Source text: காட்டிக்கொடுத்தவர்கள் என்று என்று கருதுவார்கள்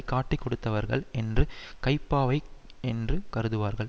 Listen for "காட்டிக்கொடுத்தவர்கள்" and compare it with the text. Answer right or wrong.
right